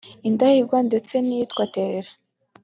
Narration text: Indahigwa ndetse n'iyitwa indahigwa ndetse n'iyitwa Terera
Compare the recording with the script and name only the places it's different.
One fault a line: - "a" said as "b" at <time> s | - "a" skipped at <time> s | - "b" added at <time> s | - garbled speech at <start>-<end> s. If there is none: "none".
- "indahigwa ndetse n'iyitwa" skipped at 1.6 s